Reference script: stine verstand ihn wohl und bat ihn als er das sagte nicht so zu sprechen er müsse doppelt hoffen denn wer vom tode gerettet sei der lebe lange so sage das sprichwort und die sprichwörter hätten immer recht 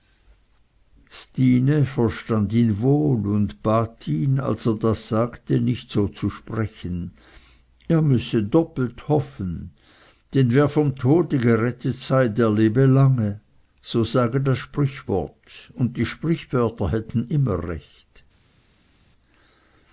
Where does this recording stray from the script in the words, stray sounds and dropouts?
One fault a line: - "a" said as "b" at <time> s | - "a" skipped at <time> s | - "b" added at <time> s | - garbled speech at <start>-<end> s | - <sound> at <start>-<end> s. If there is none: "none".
none